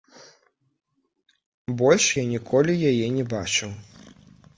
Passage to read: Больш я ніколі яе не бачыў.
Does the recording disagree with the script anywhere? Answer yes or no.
no